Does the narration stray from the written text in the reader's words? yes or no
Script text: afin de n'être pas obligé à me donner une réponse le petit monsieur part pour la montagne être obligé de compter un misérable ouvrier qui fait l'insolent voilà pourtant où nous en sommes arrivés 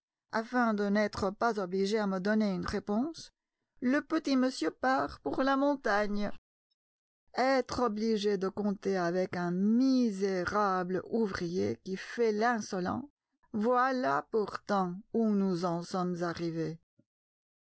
yes